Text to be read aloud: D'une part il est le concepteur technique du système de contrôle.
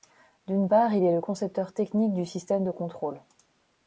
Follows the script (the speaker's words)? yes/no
yes